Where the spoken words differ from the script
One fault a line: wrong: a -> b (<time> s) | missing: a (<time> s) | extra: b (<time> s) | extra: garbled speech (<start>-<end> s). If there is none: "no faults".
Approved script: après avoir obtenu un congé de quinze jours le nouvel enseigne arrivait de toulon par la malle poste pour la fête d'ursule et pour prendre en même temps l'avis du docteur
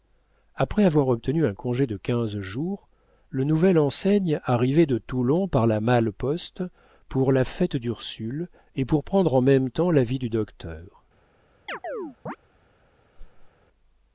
no faults